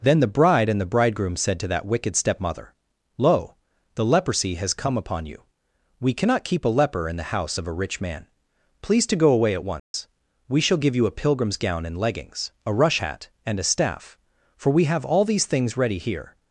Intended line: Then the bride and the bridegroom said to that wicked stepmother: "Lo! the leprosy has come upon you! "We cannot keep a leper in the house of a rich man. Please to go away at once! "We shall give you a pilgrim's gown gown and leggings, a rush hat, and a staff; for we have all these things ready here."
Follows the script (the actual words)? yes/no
no